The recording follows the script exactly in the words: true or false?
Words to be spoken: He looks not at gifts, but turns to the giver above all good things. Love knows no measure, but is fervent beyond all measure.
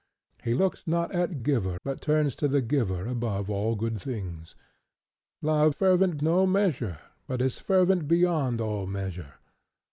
false